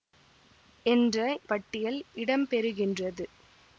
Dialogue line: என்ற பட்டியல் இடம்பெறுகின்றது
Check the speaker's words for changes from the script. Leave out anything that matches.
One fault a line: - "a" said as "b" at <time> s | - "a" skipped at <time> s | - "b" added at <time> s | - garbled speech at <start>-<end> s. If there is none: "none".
none